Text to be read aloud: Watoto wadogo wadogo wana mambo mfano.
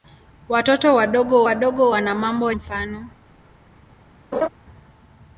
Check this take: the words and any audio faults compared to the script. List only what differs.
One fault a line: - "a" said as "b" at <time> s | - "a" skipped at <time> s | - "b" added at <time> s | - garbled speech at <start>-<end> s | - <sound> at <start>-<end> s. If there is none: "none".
- laugh at 4.3-4.5 s